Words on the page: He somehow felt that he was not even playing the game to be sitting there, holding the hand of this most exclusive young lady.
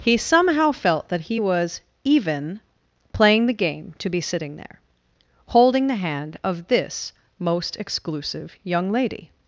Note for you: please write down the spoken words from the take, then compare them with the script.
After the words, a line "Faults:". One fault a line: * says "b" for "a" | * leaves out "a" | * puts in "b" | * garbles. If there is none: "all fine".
He somehow felt that he was even playing the game to be sitting there, holding the hand of this most exclusive young lady.
Faults:
* leaves out "not"